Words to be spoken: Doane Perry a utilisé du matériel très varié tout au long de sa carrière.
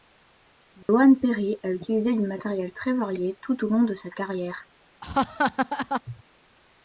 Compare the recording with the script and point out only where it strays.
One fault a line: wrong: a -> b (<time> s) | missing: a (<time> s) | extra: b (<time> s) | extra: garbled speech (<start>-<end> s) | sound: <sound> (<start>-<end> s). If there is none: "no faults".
sound: dropout (0.8-0.9 s)
sound: laugh (5.0-6.0 s)